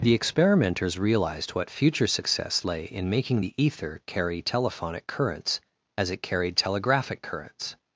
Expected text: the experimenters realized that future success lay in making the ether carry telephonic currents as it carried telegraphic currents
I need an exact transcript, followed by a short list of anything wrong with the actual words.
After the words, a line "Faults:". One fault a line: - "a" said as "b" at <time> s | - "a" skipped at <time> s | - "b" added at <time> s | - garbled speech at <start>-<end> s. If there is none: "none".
the experimenters realized what future success lay in making the ether carry telephonic currents as it carried telegraphic currents
Faults:
- "that" said as "what" at 1.5 s